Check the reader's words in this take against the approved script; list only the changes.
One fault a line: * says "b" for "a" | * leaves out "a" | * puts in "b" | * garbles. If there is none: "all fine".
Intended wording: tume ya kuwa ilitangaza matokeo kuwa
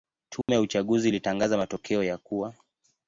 * says "uchaguzi" for "kuwa"
* puts in "ya"